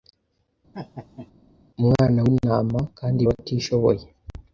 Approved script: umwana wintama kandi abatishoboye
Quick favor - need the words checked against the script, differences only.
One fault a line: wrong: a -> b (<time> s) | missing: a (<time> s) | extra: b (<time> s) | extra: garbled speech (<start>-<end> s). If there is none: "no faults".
no faults